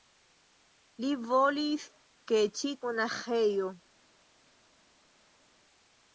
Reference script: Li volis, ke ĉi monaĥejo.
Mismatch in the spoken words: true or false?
false